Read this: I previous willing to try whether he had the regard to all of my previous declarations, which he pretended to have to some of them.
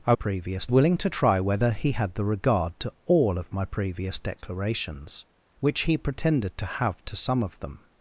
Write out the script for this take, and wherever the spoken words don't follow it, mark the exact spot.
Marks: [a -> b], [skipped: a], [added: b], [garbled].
I previous willing to try whether he had the regard to all of my previous declarations, which he pretended to have to some of them.